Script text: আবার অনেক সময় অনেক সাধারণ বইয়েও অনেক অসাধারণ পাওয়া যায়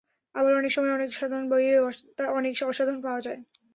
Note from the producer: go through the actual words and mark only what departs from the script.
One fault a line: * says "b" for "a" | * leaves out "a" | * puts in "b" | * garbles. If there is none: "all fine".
all fine